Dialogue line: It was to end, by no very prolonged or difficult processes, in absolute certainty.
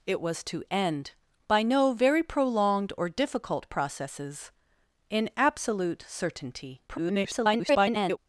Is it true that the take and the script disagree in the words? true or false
true